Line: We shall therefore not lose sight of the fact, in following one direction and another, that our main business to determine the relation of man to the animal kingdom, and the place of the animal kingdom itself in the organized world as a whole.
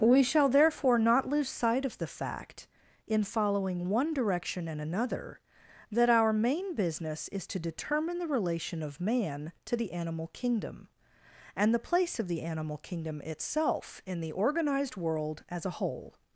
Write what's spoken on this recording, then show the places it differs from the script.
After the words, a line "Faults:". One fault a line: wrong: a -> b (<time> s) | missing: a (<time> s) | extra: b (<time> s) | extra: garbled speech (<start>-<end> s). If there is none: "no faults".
We shall therefore not lose sight of the fact, in following one direction and another, that our main business is to determine the relation of man to the animal kingdom, and the place of the animal kingdom itself in the organized world as a whole.
Faults:
extra: is (7.3 s)